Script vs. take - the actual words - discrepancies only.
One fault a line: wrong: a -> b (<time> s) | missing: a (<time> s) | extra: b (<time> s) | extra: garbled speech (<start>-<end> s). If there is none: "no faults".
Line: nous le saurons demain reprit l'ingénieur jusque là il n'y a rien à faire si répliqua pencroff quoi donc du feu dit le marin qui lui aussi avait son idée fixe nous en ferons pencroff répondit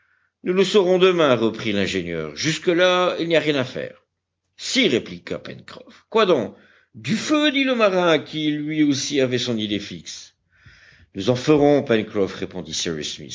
no faults